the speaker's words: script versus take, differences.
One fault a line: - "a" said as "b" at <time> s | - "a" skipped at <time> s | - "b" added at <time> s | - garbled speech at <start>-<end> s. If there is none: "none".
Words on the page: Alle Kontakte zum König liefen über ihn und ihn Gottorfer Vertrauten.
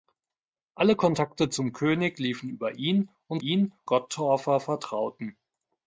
none